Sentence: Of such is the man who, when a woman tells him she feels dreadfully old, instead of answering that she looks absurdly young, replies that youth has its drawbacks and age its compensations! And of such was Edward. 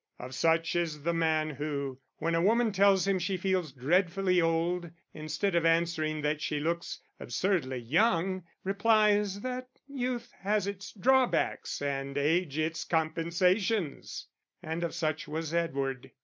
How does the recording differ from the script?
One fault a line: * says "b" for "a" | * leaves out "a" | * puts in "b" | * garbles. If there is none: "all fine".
all fine